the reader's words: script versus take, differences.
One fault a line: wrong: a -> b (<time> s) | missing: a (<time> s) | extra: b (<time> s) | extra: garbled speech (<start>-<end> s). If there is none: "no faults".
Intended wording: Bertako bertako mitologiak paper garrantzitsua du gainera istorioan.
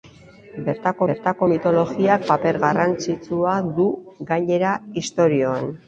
no faults